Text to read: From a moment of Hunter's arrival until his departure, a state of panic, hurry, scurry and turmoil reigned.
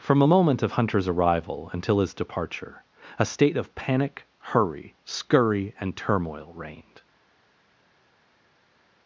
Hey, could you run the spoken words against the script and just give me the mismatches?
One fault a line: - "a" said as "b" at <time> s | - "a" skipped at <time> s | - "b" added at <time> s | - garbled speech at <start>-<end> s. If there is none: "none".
none